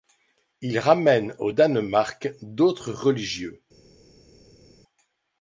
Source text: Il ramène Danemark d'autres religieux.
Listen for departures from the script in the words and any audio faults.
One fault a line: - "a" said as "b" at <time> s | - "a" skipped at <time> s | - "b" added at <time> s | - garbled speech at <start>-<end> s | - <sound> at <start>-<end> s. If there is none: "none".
- "au" added at 1.4 s